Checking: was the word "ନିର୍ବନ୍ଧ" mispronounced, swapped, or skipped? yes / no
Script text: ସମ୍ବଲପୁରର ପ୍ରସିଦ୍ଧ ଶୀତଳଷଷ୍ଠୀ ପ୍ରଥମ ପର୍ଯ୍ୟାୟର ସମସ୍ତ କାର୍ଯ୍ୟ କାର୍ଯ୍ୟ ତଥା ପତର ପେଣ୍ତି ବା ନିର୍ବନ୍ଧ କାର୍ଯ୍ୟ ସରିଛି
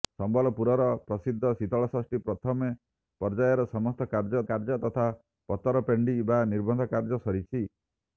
no